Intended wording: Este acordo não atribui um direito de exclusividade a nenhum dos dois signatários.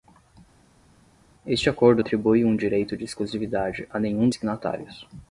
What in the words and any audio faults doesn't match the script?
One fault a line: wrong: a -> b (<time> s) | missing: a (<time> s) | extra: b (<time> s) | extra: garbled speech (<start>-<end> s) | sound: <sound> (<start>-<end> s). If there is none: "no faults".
missing: não (2.0 s)
missing: dos dois (4.3 s)